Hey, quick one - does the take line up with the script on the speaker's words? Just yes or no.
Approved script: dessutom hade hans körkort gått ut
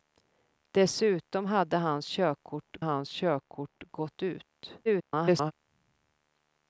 no